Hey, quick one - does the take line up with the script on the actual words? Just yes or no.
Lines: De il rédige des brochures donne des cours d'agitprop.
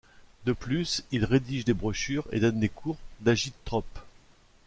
no